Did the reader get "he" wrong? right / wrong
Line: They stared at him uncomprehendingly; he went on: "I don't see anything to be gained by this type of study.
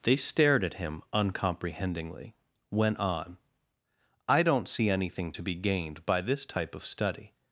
wrong